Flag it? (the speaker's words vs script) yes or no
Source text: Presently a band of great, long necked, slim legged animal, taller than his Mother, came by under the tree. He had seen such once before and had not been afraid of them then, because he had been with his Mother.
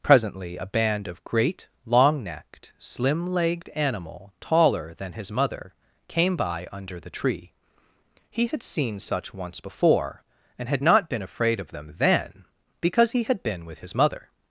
no